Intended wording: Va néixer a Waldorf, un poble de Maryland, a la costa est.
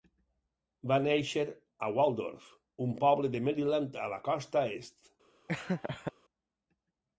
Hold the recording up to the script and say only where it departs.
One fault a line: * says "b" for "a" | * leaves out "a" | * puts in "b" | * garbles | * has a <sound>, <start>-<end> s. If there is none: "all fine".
* has a laugh, 5.5-6.1 s